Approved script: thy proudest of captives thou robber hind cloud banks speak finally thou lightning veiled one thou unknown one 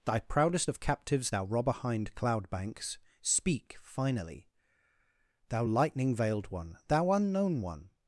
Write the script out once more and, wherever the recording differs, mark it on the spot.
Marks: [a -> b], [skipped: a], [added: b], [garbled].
thy proudest of captives thou robber hind cloud banks speak finally thou lightning veiled one thou unknown one